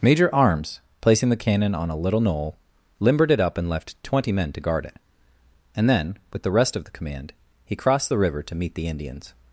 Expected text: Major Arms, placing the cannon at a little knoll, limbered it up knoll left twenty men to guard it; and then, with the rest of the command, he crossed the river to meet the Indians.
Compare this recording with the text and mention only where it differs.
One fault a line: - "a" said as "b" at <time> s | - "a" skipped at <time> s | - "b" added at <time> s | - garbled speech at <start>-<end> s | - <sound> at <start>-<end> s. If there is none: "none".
- "at" said as "on" at 1.8 s
- "knoll" said as "and" at 3.5 s